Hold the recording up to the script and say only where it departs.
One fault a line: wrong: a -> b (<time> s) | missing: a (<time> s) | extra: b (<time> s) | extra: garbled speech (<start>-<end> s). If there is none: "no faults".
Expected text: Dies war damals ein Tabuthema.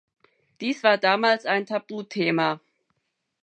no faults